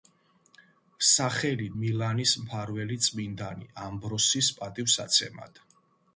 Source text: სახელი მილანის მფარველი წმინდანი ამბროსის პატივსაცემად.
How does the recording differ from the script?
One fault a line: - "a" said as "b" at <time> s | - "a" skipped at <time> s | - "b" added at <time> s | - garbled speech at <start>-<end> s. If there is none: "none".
none